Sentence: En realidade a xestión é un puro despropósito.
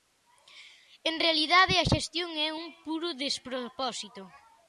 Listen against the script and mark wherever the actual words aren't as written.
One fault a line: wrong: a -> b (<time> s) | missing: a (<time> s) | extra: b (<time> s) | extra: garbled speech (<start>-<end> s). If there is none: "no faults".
no faults